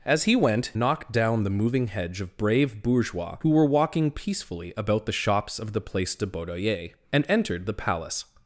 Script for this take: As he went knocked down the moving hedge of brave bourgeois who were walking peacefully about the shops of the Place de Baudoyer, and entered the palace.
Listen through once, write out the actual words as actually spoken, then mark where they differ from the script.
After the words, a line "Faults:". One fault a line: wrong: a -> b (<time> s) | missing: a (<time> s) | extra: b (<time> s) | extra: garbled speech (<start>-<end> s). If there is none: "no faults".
As he went knocked down the moving hedge of brave bourgeois who were walking peacefully about the shops of the Place de Baudoyer, and entered the palace.
Faults:
no faults